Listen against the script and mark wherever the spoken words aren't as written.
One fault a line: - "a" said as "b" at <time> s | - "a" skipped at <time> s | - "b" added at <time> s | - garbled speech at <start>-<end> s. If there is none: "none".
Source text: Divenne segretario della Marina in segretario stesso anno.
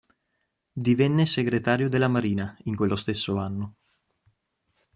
- "segretario" said as "quello" at 2.7 s